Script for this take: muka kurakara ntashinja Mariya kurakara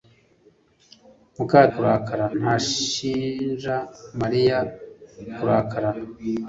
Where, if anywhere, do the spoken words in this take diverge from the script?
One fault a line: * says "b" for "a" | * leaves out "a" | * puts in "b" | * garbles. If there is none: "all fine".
all fine